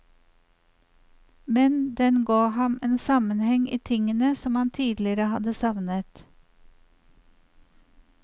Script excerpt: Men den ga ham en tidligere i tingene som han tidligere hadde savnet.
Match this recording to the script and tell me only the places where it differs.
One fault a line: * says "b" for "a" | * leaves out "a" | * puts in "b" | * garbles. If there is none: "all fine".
* says "sammenheng" for "tidligere"